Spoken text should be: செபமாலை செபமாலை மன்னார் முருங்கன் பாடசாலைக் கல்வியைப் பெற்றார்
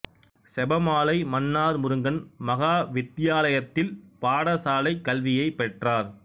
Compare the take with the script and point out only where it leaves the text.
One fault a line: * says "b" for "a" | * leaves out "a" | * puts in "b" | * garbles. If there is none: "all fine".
* leaves out "செபமாலை"
* puts in "மகா வித்தியாலயத்தில்"